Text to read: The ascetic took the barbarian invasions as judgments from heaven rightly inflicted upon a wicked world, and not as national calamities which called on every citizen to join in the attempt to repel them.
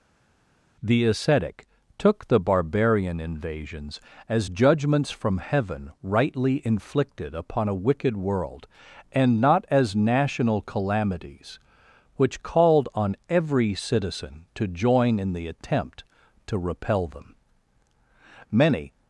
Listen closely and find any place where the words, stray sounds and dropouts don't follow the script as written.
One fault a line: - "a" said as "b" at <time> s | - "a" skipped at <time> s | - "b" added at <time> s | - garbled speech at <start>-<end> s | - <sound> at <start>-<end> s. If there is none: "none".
- "Many" added at 18.5 s